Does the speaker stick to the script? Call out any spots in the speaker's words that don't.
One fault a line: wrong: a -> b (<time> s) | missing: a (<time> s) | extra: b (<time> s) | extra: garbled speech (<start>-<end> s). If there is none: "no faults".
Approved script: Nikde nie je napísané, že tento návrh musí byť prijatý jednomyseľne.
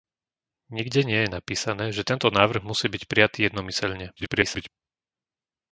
extra: garbled speech (4.2-4.7 s)